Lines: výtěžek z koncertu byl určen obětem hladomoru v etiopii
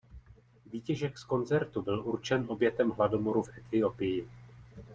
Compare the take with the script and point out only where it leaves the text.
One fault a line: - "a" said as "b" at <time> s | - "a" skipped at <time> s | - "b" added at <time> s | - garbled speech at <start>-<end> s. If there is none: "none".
none